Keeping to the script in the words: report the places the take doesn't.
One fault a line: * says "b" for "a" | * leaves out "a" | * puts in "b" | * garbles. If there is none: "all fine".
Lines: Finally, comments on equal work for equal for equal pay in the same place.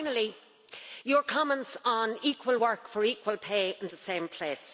* puts in "your"
* leaves out "for equal"